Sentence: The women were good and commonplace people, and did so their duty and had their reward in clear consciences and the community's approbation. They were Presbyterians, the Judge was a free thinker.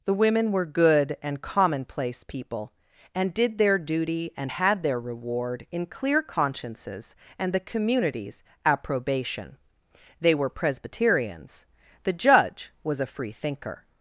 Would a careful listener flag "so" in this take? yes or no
yes